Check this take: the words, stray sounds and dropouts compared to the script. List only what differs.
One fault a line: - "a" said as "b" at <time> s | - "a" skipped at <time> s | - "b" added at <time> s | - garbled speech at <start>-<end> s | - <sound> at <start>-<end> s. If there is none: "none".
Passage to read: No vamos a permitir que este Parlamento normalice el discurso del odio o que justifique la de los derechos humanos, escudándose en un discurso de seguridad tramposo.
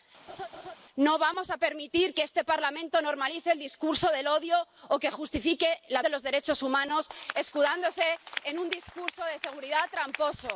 - laugh at 0.3-0.8 s